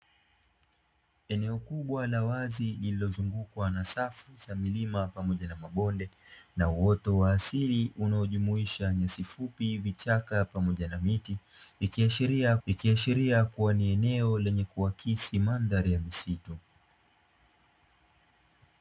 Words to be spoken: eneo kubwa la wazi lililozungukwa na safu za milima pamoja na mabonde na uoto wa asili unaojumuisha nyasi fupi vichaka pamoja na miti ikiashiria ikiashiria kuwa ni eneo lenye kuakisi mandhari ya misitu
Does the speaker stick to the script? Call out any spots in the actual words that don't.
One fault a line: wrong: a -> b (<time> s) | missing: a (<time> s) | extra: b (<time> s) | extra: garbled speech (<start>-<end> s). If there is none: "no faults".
no faults